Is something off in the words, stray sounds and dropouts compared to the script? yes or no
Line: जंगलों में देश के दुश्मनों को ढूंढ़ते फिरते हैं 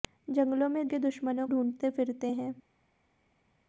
yes